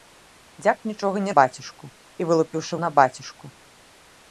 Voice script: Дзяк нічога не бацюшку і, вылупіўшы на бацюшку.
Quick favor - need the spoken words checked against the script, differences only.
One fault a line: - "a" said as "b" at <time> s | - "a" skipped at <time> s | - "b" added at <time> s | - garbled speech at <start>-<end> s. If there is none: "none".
none